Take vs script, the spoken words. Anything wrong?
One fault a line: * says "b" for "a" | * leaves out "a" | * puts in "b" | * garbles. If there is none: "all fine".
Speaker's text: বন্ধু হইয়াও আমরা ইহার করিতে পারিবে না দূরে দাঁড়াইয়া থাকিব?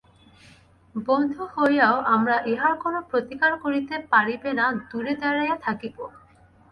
* puts in "কোনো প্রতিকার"